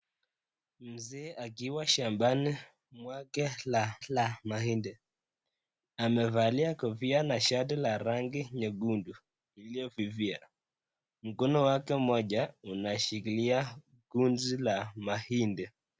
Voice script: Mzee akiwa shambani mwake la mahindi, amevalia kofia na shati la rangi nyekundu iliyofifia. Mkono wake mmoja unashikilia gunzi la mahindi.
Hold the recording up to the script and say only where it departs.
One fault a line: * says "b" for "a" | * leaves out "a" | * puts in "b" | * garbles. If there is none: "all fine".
* puts in "la"